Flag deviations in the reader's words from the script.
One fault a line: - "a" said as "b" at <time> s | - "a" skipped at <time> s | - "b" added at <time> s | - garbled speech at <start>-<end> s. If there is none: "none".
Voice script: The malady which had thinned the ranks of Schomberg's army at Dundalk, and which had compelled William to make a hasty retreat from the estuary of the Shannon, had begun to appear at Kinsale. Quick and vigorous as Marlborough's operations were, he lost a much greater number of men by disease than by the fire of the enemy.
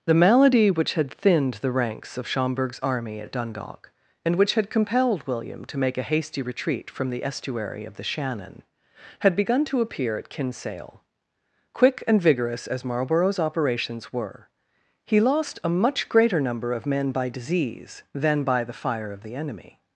none